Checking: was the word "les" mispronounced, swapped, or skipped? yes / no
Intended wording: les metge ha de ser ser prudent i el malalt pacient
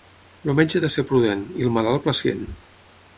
yes